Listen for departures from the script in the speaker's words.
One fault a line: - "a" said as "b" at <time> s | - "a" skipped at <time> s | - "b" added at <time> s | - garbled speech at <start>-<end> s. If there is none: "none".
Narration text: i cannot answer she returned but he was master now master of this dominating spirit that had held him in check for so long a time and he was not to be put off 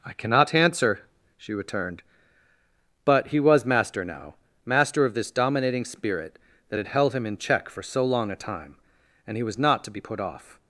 none